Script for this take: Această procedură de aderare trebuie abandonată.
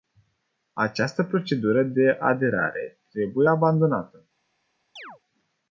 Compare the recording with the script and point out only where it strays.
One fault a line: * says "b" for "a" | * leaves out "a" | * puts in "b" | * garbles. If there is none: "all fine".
all fine